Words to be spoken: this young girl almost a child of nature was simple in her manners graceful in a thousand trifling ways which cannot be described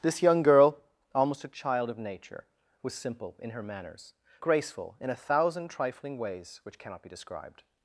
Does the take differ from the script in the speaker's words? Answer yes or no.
no